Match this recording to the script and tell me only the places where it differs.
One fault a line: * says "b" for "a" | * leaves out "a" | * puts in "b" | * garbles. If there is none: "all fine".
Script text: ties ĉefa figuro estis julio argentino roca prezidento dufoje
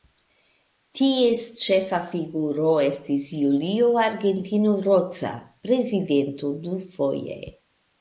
all fine